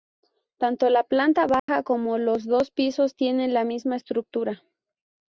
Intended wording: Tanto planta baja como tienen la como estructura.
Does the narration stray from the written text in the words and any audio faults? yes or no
yes